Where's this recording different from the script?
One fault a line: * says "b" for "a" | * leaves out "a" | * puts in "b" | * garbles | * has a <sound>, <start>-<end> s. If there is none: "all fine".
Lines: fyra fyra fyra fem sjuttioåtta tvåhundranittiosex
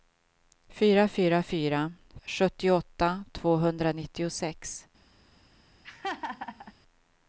* leaves out "fem"
* has a laugh, 5.8-6.7 s